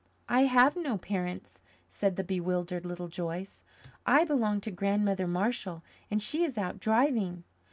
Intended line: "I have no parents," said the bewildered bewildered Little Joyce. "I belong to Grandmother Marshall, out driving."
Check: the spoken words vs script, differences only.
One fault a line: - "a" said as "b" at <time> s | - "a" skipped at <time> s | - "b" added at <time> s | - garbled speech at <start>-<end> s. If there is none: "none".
- "bewildered" skipped at 2.9 s
- "and she is" added at 6.1 s